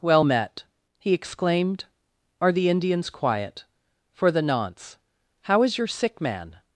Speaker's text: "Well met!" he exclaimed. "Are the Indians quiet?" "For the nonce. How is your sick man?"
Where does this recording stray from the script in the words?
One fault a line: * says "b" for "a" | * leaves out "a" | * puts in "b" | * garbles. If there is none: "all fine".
all fine